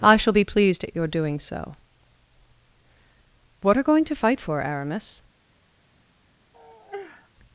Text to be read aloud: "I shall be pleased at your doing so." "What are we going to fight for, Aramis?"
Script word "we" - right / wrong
wrong